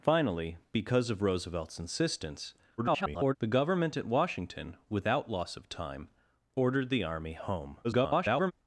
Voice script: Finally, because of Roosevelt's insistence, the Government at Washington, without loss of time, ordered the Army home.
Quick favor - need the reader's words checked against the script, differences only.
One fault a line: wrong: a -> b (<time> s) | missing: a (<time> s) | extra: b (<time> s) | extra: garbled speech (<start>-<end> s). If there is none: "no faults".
extra: garbled speech (2.8-3.4 s)
extra: garbled speech (7.8-8.5 s)